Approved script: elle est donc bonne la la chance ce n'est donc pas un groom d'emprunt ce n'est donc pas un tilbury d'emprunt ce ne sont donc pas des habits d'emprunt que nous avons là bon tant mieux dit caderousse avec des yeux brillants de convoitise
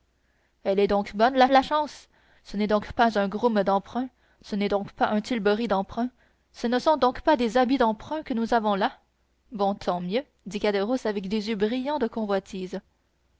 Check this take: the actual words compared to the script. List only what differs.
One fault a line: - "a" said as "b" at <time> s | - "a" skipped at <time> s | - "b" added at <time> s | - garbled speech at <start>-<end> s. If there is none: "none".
none